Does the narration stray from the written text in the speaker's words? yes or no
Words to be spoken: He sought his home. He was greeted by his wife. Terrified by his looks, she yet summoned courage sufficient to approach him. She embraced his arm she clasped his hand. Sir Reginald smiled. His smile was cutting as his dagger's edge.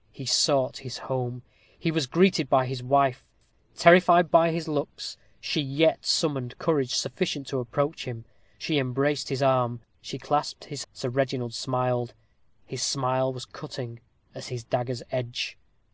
yes